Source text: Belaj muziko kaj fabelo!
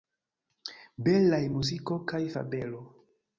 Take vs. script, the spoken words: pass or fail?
pass